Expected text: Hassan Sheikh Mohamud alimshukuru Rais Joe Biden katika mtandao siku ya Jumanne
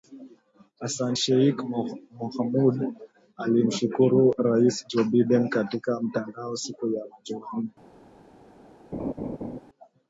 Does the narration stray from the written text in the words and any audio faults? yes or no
yes